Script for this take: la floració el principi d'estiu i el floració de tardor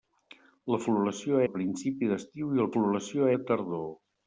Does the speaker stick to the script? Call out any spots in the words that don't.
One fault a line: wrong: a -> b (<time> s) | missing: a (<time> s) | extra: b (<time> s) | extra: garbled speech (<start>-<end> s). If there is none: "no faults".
no faults